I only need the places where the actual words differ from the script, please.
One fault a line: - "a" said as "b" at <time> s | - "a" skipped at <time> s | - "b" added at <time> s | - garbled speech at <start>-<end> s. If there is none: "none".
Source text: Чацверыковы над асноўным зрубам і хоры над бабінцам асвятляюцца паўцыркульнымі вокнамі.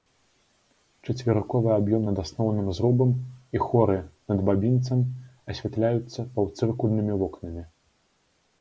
- "аб'ём" added at 1.8 s